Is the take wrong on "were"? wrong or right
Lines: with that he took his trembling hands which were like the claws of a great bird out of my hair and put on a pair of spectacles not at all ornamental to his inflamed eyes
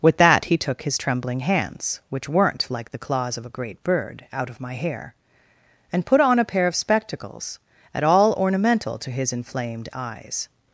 wrong